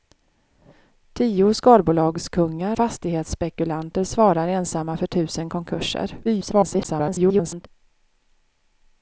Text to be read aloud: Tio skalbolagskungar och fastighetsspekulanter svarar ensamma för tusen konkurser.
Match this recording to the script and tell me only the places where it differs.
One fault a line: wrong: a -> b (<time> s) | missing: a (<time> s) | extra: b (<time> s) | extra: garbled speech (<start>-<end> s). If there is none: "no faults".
missing: och (2.8 s)
extra: garbled speech (6.2-7.7 s)